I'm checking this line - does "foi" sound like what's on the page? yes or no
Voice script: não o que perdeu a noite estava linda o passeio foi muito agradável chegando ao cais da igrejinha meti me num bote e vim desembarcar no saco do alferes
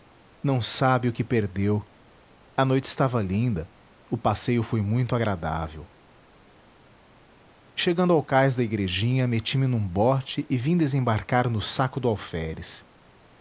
yes